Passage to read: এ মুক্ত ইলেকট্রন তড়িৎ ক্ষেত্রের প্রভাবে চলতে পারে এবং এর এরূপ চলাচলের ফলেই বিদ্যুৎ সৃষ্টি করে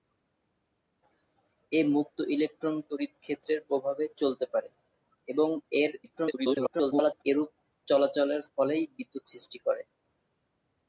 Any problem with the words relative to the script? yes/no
yes